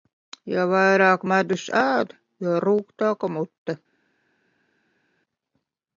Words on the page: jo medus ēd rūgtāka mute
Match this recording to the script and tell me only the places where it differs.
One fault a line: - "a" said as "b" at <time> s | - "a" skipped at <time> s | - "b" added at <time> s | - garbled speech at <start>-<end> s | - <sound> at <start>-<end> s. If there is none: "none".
- "vairāk" added at 0.7 s
- "jo" added at 2.5 s